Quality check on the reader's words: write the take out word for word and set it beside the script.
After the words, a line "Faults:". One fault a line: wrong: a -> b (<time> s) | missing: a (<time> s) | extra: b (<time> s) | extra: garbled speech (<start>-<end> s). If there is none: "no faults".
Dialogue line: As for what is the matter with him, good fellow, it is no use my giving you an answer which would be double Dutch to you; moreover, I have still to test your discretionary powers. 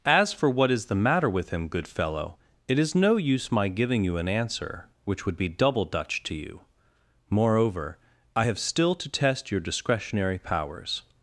As for what is the matter with him, good fellow, it is no use my giving you an answer which would be double Dutch to you; moreover, I have still to test your discretionary powers.
Faults:
no faults